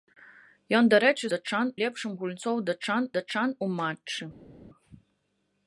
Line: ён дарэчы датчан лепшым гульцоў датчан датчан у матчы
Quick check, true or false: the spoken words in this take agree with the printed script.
true